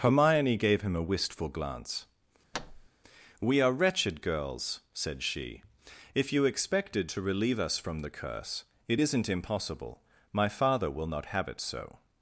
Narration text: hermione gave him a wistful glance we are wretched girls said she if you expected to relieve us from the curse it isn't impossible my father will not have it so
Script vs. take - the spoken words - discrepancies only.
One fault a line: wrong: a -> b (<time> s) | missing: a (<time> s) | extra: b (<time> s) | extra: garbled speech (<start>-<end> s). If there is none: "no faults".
no faults